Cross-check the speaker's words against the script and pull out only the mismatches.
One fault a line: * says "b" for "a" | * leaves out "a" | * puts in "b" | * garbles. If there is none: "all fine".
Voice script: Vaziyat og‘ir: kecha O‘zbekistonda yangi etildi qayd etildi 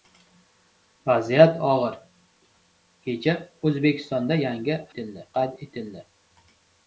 all fine